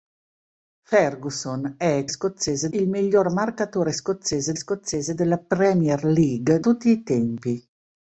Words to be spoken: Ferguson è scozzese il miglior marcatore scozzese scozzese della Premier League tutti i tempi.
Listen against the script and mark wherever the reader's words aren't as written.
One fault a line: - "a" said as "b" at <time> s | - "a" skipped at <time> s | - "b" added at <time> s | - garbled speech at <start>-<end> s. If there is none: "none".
none